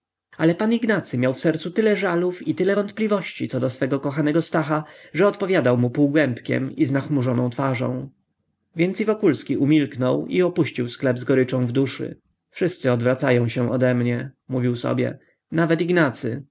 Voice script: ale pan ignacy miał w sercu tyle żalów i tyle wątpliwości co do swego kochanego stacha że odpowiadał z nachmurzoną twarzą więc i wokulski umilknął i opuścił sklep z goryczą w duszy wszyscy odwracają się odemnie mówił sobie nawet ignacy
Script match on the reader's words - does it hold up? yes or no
no